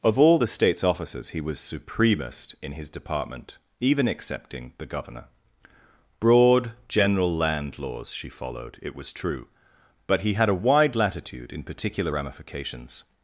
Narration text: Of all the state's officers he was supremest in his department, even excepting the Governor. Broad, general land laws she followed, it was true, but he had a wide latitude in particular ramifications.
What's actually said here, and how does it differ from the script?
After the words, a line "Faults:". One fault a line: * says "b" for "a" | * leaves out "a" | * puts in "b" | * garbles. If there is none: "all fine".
Of all the state's officers he was supremest in his department, even excepting the Governor. Broad, general land laws she followed, it was true, but he had a wide latitude in particular ramifications.
Faults:
all fine